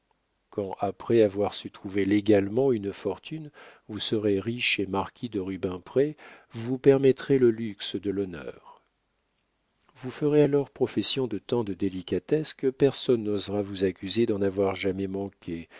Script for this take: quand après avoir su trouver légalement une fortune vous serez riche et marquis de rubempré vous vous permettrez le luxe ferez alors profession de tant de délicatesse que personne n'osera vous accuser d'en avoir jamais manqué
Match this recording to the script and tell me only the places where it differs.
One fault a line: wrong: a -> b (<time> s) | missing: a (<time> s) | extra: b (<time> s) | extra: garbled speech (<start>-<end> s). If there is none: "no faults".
extra: de l'honneur vous (8.0 s)